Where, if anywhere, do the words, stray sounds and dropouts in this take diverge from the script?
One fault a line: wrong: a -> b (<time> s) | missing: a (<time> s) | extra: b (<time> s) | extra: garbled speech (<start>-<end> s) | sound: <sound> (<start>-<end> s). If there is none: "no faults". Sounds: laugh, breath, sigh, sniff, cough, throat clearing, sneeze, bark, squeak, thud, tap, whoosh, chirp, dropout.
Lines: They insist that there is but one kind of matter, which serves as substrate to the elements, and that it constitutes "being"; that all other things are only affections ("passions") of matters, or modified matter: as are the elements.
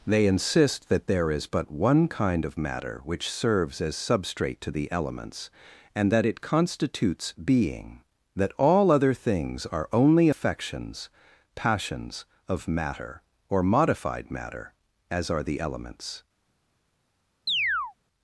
wrong: matters -> matter (12.7 s)
sound: chirp (17.5-17.9 s)